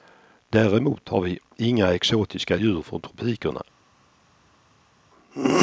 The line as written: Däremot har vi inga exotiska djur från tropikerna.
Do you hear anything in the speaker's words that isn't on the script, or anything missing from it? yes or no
no